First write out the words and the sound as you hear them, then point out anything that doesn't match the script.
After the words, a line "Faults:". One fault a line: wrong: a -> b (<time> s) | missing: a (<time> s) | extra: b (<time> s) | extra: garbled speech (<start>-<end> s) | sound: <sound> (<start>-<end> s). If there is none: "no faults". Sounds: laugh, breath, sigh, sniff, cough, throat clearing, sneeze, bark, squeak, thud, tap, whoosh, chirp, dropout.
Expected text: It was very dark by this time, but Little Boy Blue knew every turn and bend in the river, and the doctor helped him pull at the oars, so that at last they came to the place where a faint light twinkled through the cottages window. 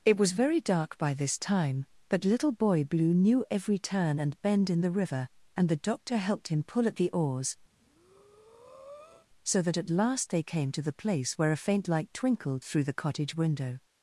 It was very dark by this time, but Little Boy Blue knew every turn and bend in the river, and the doctor helped him pull at the oars, so that at last they came to the place where a faint light twinkled through the cottage window.
Faults:
sound: breath (7.7-9.3 s)
wrong: cottages -> cottage (13.0 s)